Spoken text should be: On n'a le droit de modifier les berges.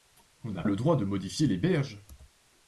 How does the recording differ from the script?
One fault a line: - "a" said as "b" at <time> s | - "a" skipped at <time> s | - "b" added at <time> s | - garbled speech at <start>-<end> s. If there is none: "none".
none